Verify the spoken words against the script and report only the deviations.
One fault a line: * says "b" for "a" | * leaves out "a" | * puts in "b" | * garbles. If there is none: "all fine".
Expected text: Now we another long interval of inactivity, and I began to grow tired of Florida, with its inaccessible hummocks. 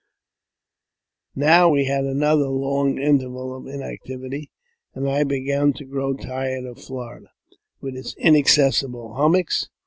* puts in "had"